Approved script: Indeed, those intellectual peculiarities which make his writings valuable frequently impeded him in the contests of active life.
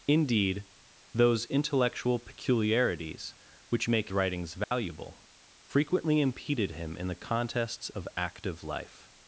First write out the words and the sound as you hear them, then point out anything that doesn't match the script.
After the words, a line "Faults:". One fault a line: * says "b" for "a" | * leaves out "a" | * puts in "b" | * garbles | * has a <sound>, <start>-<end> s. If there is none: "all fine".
Indeed, those intellectual peculiarities which make writings valuable frequently impeded him in the contests of active life.
Faults:
* leaves out "his"
* has a dropout, 4.6-4.7 s